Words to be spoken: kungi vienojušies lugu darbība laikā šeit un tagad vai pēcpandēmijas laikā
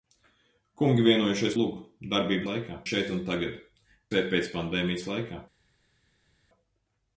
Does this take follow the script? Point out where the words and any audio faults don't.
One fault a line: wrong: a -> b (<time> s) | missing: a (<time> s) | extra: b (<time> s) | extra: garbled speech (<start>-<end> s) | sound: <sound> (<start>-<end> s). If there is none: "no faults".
no faults